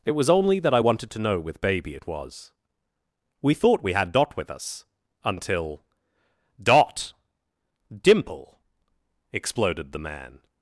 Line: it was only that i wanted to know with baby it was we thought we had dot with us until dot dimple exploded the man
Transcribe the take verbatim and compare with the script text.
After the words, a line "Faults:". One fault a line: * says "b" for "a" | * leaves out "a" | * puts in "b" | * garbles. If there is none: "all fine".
it was only that i wanted to know with baby it was we thought we had dot with us until dot dimple exploded the man
Faults:
all fine